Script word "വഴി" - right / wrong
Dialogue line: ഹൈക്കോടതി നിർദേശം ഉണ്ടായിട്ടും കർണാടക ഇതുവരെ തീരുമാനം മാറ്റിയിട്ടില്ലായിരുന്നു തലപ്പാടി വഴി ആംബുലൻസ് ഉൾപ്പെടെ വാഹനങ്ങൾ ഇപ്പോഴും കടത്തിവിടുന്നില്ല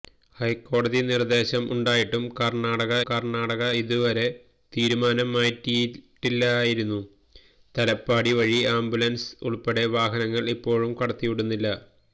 right